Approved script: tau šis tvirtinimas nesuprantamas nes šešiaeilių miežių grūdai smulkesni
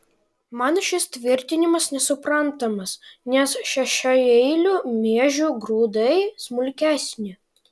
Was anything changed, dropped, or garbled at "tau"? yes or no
yes